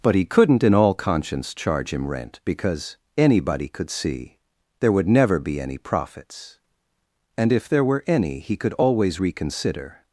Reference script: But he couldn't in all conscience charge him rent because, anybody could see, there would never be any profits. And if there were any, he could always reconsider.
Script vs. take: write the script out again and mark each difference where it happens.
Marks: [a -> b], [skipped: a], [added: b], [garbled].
But he couldn't in all conscience charge him rent because, anybody could see, there would never be any profits. And if there were any, he could always reconsider.